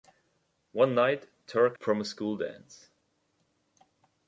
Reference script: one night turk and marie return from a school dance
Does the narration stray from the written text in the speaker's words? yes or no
yes